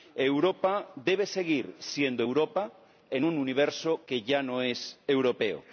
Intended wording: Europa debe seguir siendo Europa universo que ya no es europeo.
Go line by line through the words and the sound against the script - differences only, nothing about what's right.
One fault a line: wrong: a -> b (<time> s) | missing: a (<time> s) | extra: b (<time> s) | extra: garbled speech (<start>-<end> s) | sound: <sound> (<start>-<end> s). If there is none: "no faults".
extra: en un (3.1 s)